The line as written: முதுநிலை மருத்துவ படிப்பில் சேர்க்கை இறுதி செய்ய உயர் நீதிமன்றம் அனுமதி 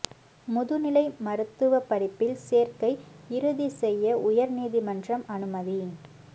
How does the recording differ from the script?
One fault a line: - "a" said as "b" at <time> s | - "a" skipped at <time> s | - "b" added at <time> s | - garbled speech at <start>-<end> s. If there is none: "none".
none